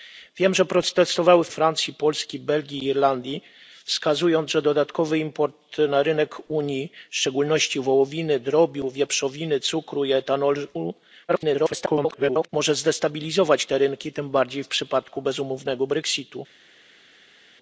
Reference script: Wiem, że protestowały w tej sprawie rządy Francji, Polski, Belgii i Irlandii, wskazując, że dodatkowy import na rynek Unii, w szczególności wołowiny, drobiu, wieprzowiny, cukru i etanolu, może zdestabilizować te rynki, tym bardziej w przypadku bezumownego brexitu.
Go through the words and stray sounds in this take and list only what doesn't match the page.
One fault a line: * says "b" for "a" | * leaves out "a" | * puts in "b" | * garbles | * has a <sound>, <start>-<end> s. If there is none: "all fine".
* leaves out "tej sprawie rządy"
* garbles